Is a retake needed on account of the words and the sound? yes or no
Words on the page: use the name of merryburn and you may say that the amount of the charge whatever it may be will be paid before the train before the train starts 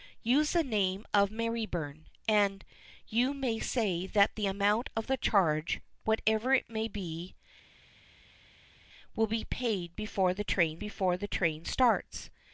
no